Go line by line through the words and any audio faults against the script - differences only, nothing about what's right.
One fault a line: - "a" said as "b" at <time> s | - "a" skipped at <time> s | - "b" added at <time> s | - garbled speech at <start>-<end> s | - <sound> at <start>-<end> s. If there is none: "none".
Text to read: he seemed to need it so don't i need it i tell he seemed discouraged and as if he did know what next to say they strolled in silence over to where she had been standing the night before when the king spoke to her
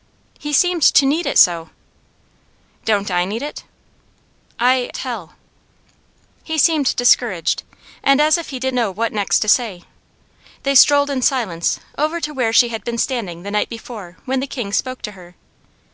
none